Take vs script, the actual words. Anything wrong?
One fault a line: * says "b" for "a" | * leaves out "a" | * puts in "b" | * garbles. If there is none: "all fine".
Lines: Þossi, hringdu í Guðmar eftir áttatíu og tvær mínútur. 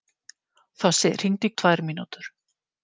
* leaves out "Guðmar eftir áttatíu"